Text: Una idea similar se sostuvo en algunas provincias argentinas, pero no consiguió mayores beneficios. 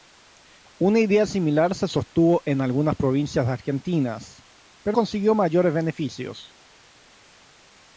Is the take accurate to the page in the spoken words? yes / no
no